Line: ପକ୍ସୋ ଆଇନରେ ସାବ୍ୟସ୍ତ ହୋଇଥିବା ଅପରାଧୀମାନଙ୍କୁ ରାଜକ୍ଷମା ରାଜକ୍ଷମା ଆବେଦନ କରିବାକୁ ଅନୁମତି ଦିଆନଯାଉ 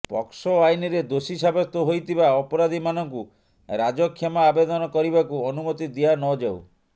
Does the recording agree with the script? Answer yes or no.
no